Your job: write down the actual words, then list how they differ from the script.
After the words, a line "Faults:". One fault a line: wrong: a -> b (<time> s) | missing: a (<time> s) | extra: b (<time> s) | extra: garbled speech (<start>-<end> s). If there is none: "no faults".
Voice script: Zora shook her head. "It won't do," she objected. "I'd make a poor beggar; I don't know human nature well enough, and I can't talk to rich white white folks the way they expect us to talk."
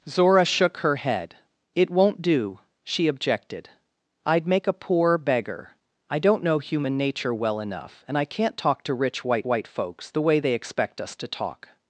Zora shook her head. "It won't do," she objected. "I'd make a poor beggar; I don't know human nature well enough, and I can't talk to rich white white folks the way they expect us to talk."
Faults:
no faults